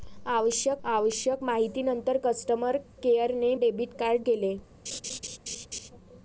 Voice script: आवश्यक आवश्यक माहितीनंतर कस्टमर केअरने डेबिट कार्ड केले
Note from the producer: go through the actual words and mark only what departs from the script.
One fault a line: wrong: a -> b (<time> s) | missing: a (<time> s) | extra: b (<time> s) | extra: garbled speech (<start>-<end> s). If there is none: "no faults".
no faults